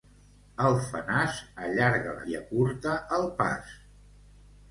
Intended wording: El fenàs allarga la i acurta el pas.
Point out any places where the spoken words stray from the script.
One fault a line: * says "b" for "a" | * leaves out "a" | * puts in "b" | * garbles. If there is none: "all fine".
all fine